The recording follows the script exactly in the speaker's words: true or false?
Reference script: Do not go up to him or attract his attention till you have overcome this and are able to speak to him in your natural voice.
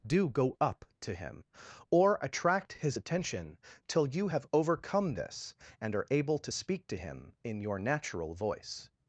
false